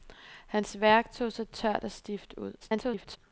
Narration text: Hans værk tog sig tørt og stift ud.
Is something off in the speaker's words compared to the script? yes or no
yes